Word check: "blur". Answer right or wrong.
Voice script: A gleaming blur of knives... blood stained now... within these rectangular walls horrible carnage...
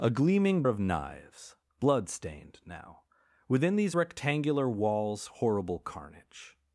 wrong